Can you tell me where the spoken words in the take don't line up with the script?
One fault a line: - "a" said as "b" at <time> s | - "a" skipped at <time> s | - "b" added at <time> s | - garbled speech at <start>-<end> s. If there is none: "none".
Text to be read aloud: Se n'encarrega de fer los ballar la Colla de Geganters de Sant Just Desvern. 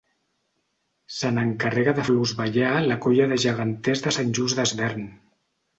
- "fer" skipped at 2.1 s